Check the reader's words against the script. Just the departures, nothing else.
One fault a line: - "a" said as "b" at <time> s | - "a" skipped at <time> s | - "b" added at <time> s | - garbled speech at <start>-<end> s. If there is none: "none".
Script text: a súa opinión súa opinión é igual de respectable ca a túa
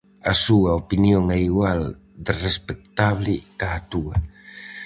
- "súa opinión" skipped at 1.2 s